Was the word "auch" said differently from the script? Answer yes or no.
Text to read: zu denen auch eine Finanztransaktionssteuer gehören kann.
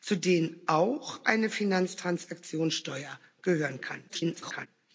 no